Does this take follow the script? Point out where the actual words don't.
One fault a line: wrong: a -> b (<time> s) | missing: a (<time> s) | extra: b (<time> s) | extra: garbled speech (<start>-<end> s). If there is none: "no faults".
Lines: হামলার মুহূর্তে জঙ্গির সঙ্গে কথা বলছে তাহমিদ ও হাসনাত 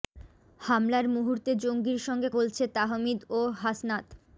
missing: কথা (2.3 s)